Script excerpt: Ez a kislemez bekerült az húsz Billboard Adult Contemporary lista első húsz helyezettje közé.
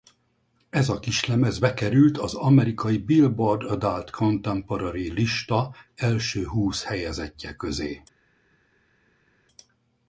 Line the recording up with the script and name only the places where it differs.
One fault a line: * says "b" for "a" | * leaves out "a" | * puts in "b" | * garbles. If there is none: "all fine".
* says "amerikai" for "húsz"